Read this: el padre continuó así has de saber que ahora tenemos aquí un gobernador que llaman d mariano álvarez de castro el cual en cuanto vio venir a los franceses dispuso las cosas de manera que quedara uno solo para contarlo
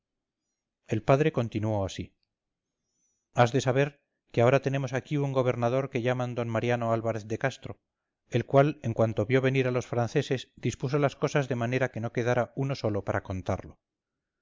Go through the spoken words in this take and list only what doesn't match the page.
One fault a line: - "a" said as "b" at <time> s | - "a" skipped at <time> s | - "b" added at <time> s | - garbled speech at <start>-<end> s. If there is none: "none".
- "no" added at 12.0 s